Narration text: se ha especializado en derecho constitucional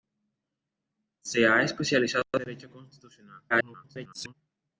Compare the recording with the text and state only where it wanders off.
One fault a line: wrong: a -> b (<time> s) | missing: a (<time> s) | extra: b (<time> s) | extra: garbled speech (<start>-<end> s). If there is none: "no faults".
extra: garbled speech (3.5-4.3 s)